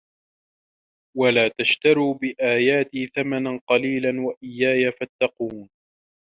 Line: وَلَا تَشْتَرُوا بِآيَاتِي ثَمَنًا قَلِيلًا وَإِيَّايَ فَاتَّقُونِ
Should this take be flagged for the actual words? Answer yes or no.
no